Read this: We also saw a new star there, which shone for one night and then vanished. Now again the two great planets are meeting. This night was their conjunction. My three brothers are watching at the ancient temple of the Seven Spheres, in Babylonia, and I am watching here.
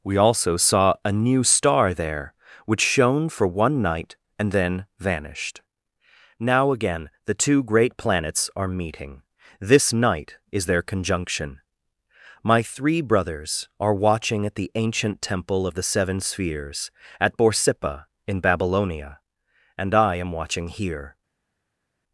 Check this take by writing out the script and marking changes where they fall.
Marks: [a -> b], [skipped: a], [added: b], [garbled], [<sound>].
We also saw a new star there, which shone for one night and then vanished. Now again the two great planets are meeting. This night [was -> is] their conjunction. My three brothers are watching at the ancient temple of the Seven Spheres, [added: at Borsippa] in Babylonia, and I am watching here.